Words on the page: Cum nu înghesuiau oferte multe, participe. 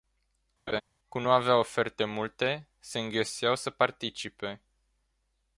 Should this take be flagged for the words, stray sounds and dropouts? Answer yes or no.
yes